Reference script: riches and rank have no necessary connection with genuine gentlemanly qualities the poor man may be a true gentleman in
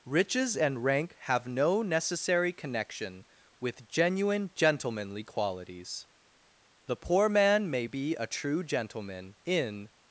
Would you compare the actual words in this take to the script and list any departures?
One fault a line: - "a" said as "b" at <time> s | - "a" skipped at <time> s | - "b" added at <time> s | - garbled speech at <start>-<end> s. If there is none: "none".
none